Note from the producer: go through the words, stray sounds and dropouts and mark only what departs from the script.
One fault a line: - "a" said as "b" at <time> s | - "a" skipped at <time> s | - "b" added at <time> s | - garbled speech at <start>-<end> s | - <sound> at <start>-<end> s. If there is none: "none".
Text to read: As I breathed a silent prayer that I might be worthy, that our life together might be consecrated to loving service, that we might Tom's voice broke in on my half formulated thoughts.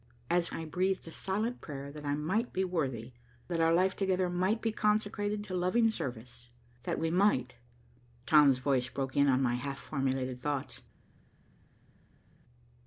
none